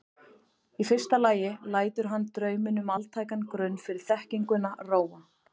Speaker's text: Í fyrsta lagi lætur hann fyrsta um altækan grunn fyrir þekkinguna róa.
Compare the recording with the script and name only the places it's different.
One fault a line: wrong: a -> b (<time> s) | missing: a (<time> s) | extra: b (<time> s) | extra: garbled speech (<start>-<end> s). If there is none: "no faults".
wrong: fyrsta -> drauminn (2.4 s)